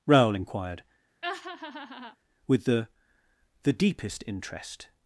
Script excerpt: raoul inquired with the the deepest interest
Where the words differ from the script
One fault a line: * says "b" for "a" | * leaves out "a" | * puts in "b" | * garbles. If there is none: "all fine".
all fine